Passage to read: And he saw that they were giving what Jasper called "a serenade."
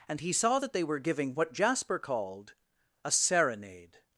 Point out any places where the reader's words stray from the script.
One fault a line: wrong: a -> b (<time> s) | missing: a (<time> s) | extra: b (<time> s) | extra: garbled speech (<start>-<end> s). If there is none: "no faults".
no faults